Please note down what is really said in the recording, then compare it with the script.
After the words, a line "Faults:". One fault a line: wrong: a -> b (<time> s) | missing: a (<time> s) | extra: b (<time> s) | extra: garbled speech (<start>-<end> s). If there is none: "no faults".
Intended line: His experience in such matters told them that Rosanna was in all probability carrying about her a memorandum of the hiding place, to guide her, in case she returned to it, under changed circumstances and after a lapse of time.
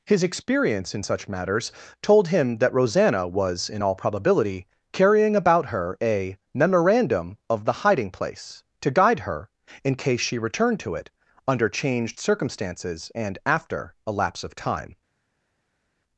His experience in such matters told him that Rosanna was in all probability carrying about her a memorandum of the hiding place, to guide her, in case she returned to it, under changed circumstances and after a lapse of time.
Faults:
wrong: them -> him (2.3 s)